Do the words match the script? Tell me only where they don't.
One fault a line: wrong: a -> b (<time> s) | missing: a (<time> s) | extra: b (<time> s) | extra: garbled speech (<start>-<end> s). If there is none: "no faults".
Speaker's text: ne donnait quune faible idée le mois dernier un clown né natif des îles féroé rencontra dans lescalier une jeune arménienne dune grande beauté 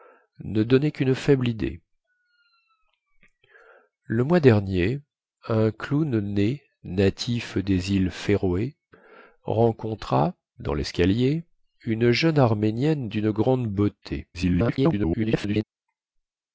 extra: garbled speech (14.3-15.6 s)